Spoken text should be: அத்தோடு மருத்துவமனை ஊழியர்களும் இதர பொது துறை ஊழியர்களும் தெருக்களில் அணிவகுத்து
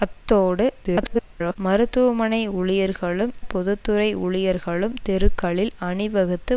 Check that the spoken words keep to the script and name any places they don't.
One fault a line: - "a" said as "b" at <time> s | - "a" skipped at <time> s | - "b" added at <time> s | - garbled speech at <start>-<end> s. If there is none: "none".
- garbled speech at 0.8-1.6 s
- "இதர" skipped at 3.3 s